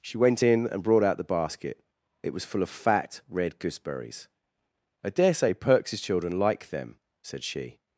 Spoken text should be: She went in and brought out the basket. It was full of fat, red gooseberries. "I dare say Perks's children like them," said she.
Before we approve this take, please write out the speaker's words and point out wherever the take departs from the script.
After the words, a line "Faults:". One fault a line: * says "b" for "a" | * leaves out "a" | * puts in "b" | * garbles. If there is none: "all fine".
She went in and brought out the basket. It was full of fat, red gooseberries. "I dare say Perks's children like them," said she.
Faults:
all fine